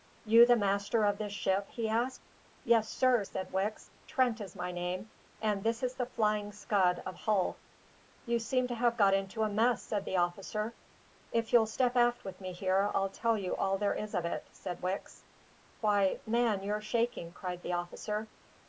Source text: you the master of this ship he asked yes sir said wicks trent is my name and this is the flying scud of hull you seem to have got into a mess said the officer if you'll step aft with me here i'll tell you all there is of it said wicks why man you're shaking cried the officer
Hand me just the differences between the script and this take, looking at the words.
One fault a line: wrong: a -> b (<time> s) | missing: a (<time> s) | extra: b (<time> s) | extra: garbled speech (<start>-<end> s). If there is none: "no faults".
no faults